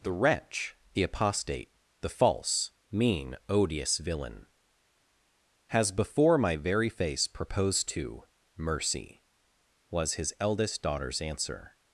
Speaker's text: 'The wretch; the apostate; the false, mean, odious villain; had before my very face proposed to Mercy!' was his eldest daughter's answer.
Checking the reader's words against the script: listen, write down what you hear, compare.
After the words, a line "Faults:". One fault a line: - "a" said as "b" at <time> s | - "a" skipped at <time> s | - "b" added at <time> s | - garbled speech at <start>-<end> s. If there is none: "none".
'The wretch; the apostate; the false, mean, odious villain; has before my very face proposed to Mercy!' was his eldest daughter's answer.
Faults:
- "had" said as "has" at 5.7 s